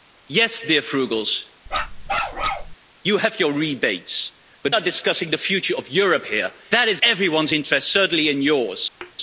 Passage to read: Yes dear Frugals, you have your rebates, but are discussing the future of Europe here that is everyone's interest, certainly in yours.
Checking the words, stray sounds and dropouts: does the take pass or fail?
fail